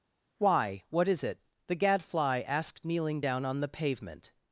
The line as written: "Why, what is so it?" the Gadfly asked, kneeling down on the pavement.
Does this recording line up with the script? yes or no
no